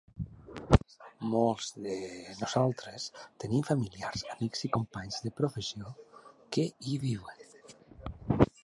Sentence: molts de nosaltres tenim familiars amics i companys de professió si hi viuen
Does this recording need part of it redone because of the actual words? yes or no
yes